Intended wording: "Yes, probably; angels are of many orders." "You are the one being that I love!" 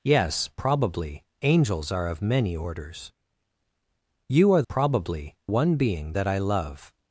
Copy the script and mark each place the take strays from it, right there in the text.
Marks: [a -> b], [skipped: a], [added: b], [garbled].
"Yes, probably; angels are of many orders." "You are [the -> probably] one being that I love!"